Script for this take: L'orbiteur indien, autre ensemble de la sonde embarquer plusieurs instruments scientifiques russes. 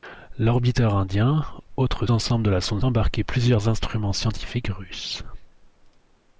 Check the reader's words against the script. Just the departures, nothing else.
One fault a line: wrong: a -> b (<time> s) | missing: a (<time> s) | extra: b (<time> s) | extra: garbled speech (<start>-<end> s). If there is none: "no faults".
no faults